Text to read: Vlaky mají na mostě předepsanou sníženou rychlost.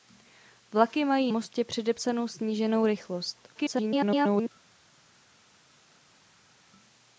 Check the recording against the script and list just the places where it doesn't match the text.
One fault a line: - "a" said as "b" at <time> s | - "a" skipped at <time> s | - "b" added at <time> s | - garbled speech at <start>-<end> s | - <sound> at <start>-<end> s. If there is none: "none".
- "na" skipped at 1.3 s
- garbled speech at 3.5-4.5 s